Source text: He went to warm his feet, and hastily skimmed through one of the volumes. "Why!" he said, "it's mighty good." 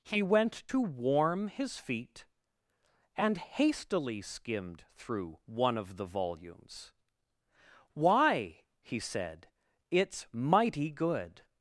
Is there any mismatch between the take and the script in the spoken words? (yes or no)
no